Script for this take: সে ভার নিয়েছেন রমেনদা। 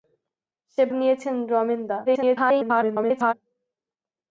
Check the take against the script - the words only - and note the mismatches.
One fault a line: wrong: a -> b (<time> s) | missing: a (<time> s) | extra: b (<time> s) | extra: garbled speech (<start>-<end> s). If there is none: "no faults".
missing: ভার (0.8 s)
extra: garbled speech (2.1-3.3 s)